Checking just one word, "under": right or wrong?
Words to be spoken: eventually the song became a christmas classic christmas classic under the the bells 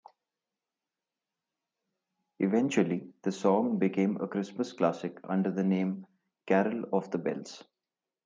wrong